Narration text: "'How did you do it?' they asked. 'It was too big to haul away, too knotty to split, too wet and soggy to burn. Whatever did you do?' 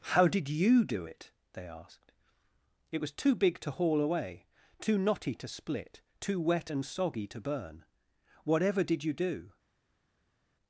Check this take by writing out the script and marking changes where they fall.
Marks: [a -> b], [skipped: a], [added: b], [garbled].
"'How did you do it?' they asked. 'It was too big to haul away, too knotty to split, too wet and soggy to burn. Whatever did you do?'